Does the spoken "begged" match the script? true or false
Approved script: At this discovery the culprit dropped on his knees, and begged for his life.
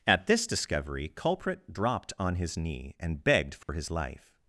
true